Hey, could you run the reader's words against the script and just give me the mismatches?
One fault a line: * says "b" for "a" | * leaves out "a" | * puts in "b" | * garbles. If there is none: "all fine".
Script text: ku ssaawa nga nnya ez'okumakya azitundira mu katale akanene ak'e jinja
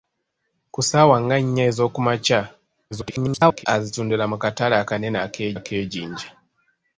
* garbles
* puts in "ak'e"